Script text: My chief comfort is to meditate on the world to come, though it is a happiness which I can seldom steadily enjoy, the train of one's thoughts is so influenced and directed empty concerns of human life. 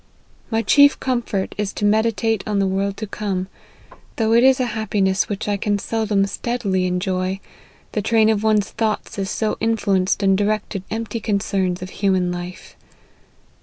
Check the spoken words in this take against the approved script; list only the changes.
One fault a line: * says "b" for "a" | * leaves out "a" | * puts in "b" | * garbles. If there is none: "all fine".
all fine